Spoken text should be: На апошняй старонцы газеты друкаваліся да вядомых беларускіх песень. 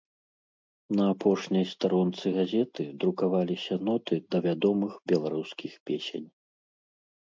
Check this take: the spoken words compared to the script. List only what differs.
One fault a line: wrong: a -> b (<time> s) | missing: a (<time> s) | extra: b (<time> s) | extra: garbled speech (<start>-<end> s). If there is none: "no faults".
extra: ноты (3.9 s)